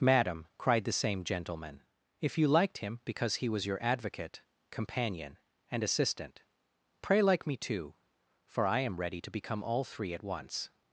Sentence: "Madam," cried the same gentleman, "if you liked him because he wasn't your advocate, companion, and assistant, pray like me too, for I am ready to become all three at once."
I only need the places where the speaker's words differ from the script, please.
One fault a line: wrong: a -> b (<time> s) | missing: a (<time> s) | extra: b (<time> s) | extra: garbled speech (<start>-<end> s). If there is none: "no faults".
wrong: wasn't -> was (3.5 s)